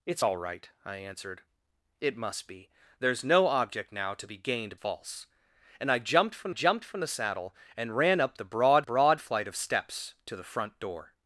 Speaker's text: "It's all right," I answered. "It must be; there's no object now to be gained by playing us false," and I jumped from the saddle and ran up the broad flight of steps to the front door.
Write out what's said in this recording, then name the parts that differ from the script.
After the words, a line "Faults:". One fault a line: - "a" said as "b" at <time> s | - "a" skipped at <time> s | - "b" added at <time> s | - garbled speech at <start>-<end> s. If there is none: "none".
"It's all right," I answered. "It must be; there's no object now to be gained false," and I jumped from jumped from the saddle and ran up the broad broad flight of steps to the front door.
Faults:
- "by playing us" skipped at 4.8 s
- "jumped from" added at 6.5 s
- "broad" added at 8.8 s